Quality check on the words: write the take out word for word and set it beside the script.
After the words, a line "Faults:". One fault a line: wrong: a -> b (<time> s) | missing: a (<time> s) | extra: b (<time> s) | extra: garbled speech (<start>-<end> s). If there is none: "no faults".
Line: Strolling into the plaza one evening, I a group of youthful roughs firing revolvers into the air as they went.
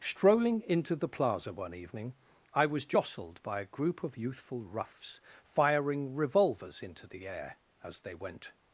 Strolling into the plaza one evening, I was jostled by a group of youthful roughs firing revolvers into the air as they went.
Faults:
extra: was jostled by (2.6 s)